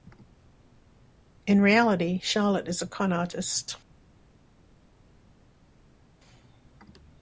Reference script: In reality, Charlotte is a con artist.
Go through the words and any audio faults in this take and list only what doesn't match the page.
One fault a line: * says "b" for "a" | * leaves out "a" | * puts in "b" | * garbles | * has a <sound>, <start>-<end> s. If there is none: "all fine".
all fine